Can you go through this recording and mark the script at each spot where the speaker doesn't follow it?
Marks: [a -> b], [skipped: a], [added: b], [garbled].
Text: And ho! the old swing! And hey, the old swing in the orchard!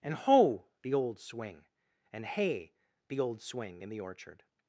And ho! the old swing! And hey, the old swing in the orchard!